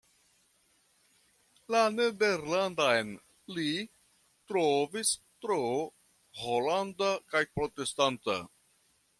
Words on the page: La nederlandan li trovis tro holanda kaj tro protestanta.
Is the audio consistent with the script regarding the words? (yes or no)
no